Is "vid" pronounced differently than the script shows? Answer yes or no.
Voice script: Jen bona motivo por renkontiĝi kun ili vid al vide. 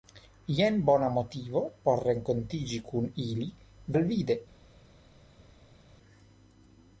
yes